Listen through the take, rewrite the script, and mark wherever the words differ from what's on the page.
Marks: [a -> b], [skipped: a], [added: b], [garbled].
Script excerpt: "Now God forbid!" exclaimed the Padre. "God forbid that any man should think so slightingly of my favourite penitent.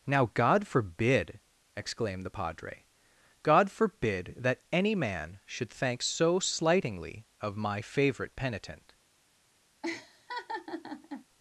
"Now God forbid!" exclaimed the Padre. "God forbid that any man should [think -> thank] so slightingly of my favourite penitent.